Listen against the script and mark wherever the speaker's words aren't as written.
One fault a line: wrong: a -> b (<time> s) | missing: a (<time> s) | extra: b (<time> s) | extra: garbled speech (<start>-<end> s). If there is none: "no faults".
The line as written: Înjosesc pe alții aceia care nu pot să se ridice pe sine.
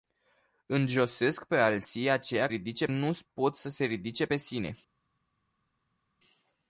wrong: care -> ridice (2.5 s)